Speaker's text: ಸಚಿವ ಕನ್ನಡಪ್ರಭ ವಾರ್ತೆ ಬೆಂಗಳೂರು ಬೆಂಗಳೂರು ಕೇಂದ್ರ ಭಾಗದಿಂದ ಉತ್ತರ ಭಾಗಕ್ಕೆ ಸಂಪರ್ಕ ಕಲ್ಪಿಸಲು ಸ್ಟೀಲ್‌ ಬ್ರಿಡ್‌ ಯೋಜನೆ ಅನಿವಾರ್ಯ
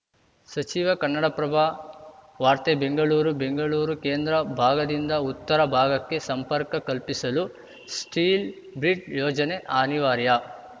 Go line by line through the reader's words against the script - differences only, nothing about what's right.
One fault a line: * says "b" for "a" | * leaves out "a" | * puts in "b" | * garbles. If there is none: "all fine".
all fine